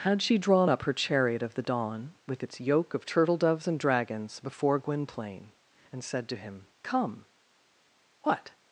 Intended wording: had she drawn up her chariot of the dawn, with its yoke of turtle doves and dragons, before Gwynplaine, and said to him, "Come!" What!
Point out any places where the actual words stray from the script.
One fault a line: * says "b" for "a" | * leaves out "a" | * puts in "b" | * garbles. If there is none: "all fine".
all fine